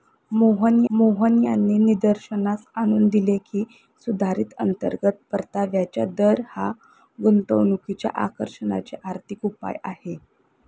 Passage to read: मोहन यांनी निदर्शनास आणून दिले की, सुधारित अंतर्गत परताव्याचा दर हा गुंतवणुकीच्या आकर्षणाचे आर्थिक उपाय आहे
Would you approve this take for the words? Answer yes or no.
no